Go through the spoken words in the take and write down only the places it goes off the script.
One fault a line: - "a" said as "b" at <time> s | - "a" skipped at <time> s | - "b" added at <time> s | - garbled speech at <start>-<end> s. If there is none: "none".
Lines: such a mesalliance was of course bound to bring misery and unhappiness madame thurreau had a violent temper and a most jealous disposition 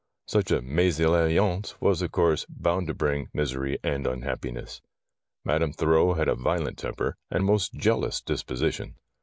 none